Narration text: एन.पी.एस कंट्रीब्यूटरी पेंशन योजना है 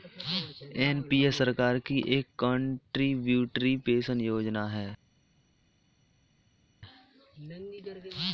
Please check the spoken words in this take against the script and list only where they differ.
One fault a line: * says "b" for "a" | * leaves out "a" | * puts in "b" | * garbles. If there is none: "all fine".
* puts in "सरकार की एक"